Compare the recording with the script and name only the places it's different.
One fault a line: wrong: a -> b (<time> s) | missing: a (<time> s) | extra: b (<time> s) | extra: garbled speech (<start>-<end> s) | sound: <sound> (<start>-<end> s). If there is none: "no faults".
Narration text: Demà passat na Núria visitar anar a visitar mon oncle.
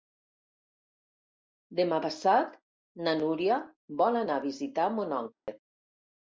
wrong: visitar -> vol (4.0 s)
sound: dropout (5.3-5.5 s)